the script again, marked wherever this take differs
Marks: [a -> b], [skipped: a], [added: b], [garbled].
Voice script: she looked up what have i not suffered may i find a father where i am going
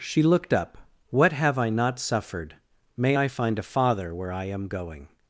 she looked up what have i not suffered may i find a father where i am going